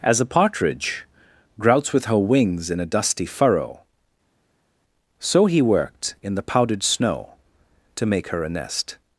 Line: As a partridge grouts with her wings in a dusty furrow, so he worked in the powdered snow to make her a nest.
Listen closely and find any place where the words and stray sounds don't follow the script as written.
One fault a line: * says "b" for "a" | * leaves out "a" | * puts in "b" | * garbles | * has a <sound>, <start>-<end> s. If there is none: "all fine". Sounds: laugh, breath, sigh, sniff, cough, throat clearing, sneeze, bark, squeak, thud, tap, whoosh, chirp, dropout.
all fine